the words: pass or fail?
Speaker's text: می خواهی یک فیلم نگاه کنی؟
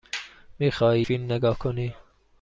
fail